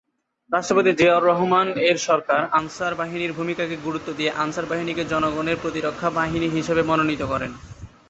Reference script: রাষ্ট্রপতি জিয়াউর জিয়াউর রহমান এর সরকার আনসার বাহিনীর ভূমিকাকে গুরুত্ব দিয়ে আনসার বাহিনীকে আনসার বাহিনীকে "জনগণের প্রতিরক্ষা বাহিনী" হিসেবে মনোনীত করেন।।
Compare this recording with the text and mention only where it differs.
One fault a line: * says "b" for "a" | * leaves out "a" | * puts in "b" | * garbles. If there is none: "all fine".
* leaves out "জিয়াউর"
* leaves out "আনসার বাহিনীকে"